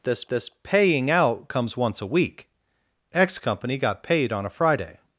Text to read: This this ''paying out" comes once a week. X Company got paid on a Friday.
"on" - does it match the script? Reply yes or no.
yes